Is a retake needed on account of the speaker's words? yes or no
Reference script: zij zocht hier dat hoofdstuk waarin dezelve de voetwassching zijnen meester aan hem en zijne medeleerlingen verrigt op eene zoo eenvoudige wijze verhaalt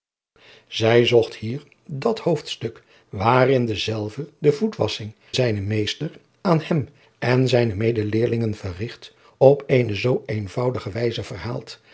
no